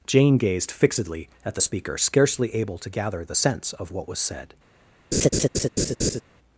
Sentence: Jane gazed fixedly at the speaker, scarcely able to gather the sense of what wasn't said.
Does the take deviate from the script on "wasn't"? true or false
true